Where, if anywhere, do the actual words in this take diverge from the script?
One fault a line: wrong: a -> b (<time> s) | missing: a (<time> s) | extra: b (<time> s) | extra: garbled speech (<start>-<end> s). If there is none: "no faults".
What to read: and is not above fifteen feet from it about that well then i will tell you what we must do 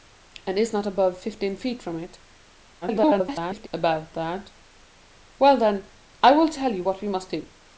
extra: garbled speech (2.8-3.7 s)